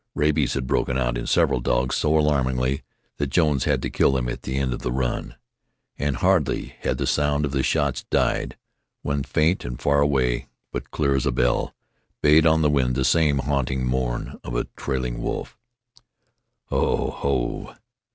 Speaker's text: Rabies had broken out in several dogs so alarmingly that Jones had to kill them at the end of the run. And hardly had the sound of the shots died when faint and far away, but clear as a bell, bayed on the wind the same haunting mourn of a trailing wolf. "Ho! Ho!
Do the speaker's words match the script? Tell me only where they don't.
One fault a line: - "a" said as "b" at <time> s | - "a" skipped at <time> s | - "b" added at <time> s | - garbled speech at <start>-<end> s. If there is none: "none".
none